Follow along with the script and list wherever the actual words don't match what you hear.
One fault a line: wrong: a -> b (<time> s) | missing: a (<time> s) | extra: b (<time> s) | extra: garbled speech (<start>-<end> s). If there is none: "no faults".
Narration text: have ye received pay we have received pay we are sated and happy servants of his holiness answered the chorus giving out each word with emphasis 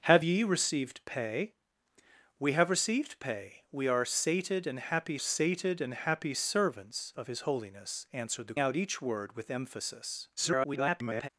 extra: sated and happy (5.2 s)
missing: chorus giving (8.6 s)
extra: garbled speech (10.4-11.3 s)